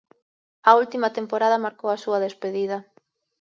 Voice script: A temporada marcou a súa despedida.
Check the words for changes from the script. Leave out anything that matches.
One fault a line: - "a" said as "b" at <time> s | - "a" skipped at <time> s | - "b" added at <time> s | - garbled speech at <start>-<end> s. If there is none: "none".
- "última" added at 0.8 s